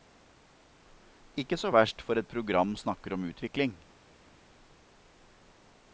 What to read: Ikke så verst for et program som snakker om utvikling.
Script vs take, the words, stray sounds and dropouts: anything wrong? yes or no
yes